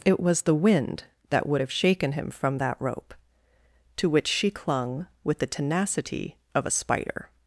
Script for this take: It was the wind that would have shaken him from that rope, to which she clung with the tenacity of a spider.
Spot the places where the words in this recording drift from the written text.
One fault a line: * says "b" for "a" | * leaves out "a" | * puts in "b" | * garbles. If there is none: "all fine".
all fine